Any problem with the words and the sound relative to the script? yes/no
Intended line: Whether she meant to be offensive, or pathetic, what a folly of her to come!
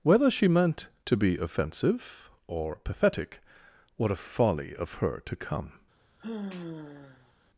yes